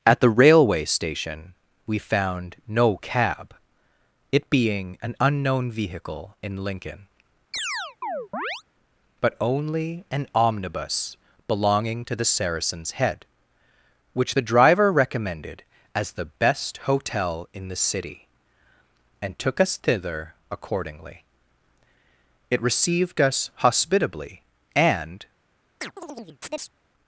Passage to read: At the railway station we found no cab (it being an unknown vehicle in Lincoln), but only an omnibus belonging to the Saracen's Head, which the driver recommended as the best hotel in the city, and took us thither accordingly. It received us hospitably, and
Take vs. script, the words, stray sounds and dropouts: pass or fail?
fail